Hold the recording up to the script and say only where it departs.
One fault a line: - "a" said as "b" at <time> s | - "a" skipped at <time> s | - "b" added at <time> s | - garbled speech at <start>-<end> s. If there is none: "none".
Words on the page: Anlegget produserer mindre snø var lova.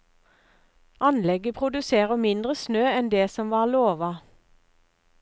- "enn det som" added at 2.9 s